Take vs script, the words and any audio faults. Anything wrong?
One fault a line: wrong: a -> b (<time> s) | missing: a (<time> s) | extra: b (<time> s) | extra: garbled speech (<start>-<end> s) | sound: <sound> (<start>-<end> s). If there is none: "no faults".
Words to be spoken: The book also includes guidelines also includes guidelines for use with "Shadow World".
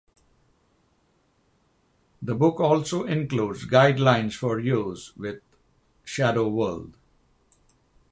missing: also includes guidelines (4.3 s)